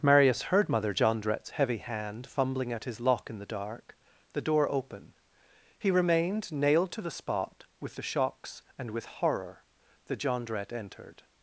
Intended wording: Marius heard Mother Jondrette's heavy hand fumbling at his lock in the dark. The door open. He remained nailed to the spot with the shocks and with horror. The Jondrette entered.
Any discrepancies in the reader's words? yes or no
no